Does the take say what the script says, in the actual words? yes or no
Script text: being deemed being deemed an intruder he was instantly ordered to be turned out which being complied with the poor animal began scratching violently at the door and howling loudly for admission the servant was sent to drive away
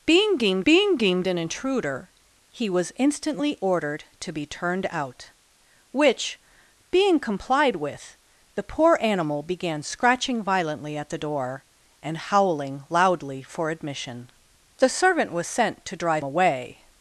yes